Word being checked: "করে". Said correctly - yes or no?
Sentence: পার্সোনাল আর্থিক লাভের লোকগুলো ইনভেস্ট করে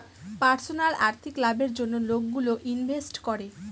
yes